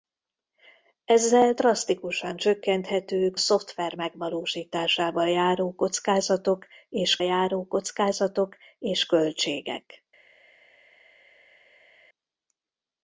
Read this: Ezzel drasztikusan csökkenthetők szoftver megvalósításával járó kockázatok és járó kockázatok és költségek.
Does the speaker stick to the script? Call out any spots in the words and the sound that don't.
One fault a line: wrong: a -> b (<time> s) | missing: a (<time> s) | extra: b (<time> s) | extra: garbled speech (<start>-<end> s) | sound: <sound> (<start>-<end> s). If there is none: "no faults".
no faults